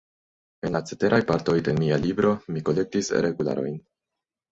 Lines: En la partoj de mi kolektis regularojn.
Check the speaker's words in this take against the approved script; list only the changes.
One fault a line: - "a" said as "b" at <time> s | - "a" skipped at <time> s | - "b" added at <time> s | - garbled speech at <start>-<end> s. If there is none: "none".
- "ceteraj" added at 0.9 s
- "mia libro" added at 1.8 s